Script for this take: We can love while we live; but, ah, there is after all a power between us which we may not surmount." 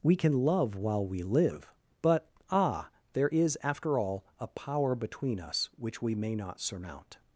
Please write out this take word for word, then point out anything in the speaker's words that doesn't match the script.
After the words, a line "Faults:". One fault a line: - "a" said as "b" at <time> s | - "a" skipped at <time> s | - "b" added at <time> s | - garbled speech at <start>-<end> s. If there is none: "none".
We can love while we live; but, ah, there is after all a power between us which we may not surmount."
Faults:
none